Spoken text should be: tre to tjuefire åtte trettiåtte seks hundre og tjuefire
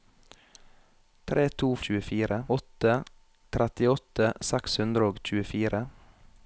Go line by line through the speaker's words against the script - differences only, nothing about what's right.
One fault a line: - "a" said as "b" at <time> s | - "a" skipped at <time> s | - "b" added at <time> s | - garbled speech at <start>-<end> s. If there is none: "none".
none